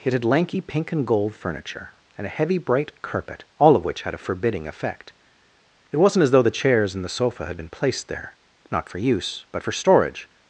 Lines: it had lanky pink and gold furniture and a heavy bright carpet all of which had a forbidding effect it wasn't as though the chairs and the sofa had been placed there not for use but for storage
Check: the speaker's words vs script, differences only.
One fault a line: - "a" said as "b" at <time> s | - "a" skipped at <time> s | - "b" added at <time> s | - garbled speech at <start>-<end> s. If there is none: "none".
none